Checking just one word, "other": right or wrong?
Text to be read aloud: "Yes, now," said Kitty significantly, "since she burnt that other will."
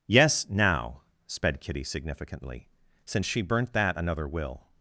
wrong